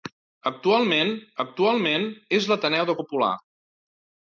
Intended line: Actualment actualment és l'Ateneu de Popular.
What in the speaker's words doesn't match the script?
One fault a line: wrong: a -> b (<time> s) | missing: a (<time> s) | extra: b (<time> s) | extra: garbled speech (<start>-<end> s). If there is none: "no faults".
no faults